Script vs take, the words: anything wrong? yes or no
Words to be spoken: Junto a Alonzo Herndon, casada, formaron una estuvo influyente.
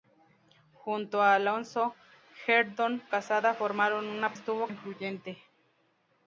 no